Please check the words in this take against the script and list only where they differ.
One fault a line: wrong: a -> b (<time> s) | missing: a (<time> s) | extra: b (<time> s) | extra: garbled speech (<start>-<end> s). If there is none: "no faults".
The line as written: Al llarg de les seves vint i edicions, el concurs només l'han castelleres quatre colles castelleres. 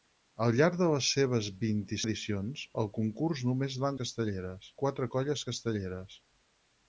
no faults